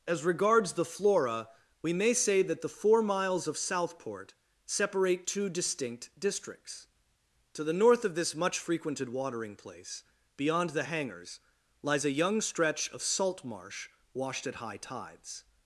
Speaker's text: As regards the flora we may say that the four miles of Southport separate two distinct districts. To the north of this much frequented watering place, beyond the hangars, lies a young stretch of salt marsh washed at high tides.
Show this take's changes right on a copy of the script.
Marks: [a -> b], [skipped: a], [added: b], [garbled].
As regards the flora we may say that the four miles of Southport separate two distinct districts. To the north of this much frequented watering place, beyond the hangars, lies a young stretch of salt marsh washed at high tides.